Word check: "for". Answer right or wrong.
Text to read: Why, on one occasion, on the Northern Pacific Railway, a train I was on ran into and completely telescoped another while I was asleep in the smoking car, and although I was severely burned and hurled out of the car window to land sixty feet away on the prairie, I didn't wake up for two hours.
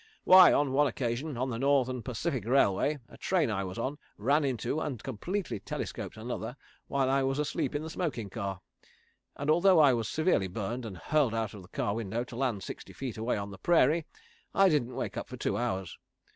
right